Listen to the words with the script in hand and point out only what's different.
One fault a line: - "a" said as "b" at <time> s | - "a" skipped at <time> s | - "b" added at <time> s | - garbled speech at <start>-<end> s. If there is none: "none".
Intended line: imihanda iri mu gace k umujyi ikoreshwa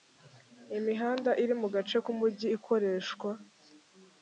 none